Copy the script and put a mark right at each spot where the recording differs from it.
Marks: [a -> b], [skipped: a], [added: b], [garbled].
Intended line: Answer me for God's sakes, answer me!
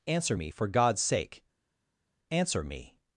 Answer me for God's [sakes, -> sake] answer me!